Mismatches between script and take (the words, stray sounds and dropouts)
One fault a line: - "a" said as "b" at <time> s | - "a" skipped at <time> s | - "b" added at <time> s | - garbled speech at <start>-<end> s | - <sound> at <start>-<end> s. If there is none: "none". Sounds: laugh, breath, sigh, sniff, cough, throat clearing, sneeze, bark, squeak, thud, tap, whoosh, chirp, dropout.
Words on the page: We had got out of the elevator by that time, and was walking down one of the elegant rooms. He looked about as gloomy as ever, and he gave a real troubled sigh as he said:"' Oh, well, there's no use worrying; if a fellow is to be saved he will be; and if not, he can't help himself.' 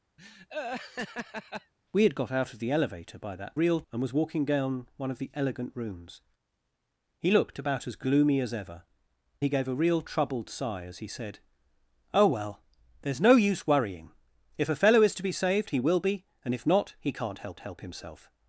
- laugh at 0.2-1.7 s
- "time" said as "real" at 3.5 s
- "and" skipped at 8.8 s
- "help" added at 17.6 s